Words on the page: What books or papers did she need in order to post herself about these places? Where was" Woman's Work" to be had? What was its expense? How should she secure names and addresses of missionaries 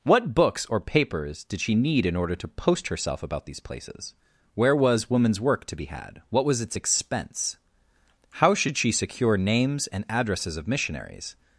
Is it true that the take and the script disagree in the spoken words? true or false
false